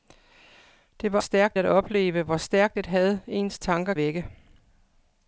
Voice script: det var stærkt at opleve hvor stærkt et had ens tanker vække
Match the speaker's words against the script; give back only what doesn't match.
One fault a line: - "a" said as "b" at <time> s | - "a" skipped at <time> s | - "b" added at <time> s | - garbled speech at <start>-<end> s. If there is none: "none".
none